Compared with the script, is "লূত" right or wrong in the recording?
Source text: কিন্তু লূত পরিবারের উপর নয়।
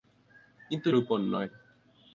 wrong